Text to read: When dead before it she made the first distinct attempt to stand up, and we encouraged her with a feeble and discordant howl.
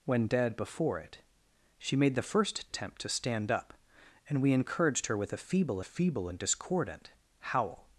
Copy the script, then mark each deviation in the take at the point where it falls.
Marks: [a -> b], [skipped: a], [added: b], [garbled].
When dead before it she made the first [skipped: distinct] attempt to stand up, and we encouraged her with a feeble [added: feeble] and discordant howl.